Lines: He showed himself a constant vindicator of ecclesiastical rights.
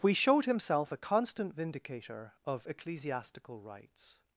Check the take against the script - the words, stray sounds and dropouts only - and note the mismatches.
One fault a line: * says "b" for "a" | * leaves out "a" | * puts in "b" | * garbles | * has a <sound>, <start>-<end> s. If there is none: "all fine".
* says "We" for "He"